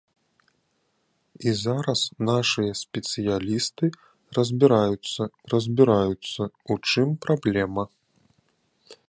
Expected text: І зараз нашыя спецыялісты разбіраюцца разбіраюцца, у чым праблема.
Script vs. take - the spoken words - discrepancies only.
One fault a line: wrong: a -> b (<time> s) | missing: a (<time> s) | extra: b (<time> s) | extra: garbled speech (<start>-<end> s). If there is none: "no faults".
no faults